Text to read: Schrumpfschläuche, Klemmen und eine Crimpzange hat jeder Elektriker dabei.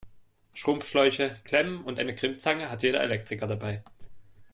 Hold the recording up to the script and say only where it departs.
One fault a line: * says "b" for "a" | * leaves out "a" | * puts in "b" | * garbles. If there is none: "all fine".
all fine